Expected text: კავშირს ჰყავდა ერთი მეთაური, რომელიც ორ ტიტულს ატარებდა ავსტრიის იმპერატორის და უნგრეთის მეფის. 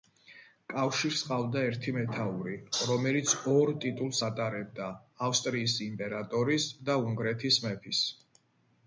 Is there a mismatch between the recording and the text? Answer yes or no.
no